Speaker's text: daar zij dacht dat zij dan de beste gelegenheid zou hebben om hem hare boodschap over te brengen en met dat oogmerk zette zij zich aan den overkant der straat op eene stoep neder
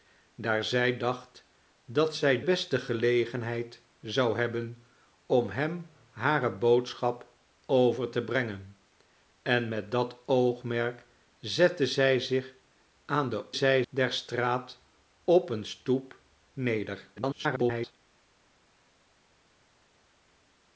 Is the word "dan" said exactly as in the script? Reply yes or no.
no